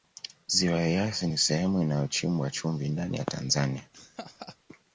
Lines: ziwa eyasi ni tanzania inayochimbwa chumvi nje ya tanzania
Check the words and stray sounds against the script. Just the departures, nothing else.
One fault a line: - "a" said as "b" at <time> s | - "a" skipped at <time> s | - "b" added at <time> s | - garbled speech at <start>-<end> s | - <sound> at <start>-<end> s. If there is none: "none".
- "tanzania" said as "sehemu" at 1.4 s
- "nje" said as "ndani" at 2.9 s
- laugh at 3.9-4.6 s